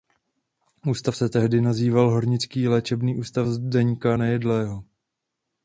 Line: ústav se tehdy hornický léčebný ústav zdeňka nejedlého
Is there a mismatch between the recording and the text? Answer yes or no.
yes